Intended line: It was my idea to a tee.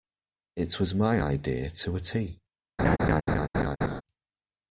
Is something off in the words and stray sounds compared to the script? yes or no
yes